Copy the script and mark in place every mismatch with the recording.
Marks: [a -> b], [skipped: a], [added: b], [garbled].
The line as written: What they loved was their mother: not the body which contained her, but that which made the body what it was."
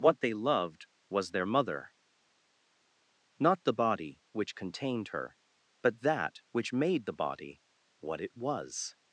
What they loved was their mother: not the body which contained her, but that which made the body what it was."